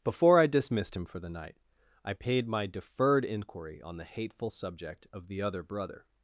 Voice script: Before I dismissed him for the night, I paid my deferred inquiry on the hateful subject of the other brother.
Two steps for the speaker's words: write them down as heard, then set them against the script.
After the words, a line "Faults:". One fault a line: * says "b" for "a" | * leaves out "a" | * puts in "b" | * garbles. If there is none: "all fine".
Before I dismissed him for the night, I paid my deferred inquiry on the hateful subject of the other brother.
Faults:
all fine